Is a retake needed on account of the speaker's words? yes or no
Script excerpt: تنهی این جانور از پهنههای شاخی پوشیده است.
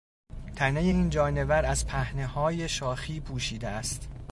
no